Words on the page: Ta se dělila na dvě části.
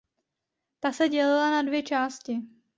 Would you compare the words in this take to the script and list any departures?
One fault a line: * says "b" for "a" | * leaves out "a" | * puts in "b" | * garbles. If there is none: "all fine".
all fine